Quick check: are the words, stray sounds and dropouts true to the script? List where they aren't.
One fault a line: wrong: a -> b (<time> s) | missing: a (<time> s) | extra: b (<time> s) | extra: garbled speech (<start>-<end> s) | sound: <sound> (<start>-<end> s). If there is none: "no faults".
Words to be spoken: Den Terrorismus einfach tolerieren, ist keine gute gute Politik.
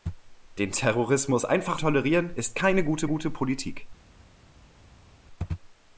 no faults